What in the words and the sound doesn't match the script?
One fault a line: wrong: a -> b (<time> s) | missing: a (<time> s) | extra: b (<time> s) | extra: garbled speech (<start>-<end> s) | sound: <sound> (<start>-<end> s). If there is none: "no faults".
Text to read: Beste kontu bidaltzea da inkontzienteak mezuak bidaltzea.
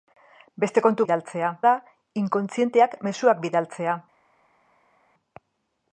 no faults